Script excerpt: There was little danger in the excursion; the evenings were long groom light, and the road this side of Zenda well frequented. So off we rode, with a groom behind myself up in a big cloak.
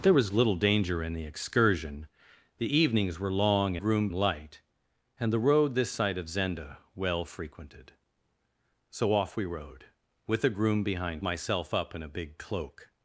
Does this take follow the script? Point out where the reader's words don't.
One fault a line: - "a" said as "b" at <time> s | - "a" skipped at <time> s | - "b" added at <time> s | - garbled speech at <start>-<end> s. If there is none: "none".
none